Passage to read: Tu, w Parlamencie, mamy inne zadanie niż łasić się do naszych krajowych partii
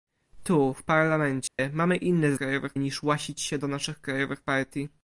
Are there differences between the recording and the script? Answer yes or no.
yes